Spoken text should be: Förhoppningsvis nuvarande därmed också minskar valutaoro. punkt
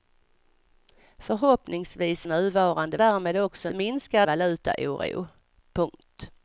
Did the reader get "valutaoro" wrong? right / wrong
right